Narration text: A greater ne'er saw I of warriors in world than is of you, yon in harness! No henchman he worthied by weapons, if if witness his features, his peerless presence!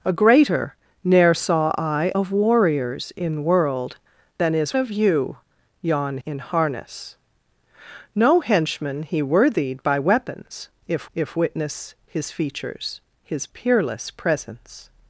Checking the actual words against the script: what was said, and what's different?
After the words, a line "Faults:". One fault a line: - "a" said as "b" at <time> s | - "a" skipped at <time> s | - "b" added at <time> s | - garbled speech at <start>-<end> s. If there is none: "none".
A greater ne'er saw I of warriors in world than is of you, yon in harness! No henchman he worthied by weapons, if if witness his features, his peerless presence!
Faults:
none